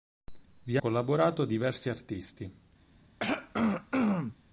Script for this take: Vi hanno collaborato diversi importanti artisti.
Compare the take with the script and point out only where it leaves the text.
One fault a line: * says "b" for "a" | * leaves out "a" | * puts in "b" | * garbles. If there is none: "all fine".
* leaves out "hanno"
* leaves out "importanti"